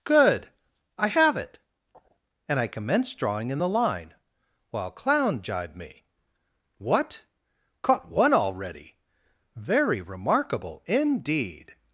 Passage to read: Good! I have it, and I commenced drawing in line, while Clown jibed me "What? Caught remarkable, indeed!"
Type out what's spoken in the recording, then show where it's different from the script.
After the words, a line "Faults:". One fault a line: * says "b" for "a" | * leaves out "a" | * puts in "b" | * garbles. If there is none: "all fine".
Good! I have it, and I commenced drawing in the line, while Clown jibed me "What? Caught one already? Very remarkable, indeed!"
Faults:
* puts in "the"
* puts in "one already Very"